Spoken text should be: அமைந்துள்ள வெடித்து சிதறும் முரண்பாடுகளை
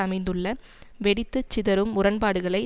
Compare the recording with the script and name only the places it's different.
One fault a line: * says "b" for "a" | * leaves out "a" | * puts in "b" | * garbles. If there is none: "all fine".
all fine